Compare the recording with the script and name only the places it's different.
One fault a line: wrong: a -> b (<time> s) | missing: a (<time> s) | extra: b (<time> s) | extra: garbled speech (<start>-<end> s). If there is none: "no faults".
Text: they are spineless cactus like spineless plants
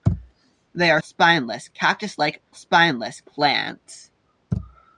no faults